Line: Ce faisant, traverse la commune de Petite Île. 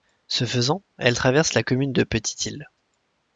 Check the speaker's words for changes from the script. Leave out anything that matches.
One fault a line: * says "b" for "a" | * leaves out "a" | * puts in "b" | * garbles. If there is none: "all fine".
* puts in "elle"